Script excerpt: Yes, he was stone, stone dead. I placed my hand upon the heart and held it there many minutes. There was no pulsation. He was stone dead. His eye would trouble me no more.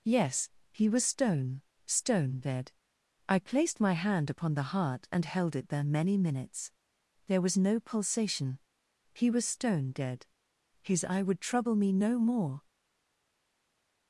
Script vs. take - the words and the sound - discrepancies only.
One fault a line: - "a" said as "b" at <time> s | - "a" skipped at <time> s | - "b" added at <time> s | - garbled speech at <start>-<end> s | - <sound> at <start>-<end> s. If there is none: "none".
none